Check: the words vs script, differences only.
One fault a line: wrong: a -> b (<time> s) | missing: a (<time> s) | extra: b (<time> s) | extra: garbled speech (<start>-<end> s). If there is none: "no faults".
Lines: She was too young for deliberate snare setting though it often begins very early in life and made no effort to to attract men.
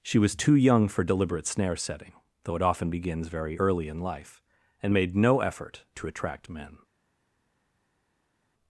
missing: to (6.1 s)